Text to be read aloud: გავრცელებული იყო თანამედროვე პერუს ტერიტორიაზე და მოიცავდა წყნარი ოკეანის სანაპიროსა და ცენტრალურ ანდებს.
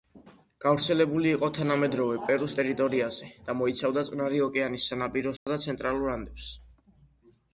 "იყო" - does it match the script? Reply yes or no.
yes